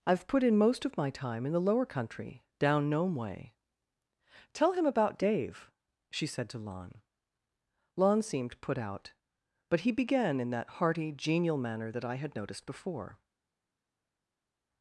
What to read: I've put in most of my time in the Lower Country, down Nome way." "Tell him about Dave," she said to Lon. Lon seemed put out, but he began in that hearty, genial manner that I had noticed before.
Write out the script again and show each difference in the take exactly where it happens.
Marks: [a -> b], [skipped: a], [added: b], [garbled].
I've put in most of my time in the Lower Country, down Nome way." "Tell him about Dave," she said to Lon. Lon seemed put out, but he began in that hearty, genial manner that I had noticed before.